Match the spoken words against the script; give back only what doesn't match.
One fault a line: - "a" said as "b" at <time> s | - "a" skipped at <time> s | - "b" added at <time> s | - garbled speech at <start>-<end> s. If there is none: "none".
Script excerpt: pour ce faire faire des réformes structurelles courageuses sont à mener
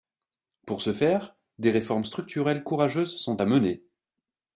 - "faire" skipped at 1.4 s